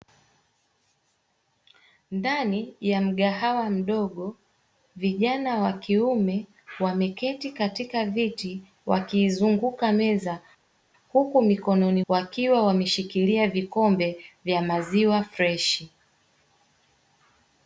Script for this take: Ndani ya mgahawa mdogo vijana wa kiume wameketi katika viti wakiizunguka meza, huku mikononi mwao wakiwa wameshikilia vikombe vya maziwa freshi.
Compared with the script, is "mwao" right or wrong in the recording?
wrong